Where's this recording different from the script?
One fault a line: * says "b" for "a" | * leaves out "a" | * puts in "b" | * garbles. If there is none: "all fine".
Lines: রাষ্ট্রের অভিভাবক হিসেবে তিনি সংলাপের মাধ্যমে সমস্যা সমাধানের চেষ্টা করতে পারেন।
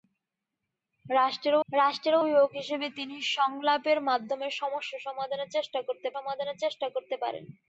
* puts in "রাষ্ট্রের"
* puts in "সমাধানের চেষ্টা করতে"